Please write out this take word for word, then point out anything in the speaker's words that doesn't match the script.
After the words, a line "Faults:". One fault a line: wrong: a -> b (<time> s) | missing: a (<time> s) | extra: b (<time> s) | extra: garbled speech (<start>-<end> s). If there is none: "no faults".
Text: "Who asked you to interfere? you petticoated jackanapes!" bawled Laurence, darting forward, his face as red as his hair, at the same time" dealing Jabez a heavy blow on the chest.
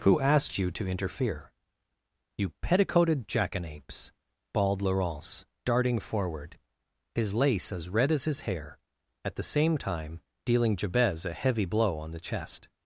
"Who asked you to interfere? you petticoated jackanapes!" bawled Laurence, darting forward, his lace as red as his hair, at the same time" dealing Jabez a heavy blow on the chest.
Faults:
wrong: face -> lace (7.3 s)